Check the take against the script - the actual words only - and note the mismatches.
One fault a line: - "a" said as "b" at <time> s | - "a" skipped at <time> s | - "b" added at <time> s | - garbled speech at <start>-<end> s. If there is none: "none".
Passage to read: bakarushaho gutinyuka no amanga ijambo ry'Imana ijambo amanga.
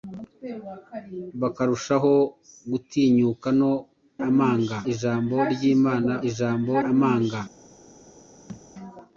none